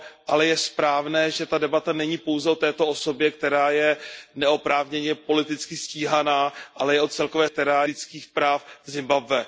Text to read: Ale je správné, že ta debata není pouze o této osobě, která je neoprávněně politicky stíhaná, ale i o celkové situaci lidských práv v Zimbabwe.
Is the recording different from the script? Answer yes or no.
yes